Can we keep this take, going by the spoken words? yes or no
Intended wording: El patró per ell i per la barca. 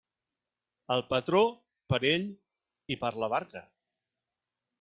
yes